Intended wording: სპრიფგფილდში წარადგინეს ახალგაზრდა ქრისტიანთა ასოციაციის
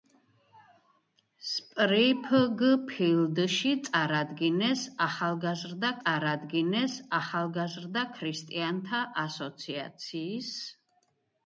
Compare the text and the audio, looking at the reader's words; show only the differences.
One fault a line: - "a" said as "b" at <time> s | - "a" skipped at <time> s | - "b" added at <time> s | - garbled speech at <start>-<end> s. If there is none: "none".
- "წარადგინეს ახალგაზრდა" added at 6.0 s